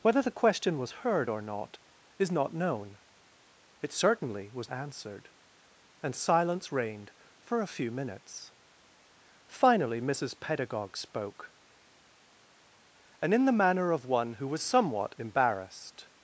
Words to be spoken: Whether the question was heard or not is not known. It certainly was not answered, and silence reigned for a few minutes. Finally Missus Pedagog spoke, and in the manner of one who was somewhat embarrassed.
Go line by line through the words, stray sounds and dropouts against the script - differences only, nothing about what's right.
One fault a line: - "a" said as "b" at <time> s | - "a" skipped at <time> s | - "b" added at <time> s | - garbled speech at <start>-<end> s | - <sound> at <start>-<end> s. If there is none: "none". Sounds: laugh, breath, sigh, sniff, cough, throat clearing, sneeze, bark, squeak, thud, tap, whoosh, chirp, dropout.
- "not" skipped at 4.7 s